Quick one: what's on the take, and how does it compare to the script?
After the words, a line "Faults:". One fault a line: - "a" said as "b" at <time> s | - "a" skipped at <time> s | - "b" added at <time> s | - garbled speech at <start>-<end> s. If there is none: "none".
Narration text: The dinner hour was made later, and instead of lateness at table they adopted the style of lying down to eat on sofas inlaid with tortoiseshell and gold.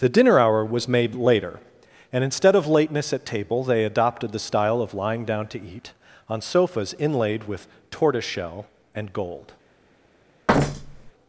The dinner hour was made later, and instead of lateness at table they adopted the style of lying down to eat on sofas inlaid with tortoiseshell and gold.
Faults:
none